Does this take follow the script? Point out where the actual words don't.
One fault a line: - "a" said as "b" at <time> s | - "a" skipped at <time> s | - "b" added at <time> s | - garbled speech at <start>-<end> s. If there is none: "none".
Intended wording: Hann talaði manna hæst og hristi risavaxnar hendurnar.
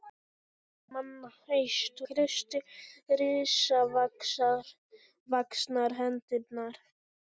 - "talaði" skipped at 0.9 s
- "og" skipped at 2.0 s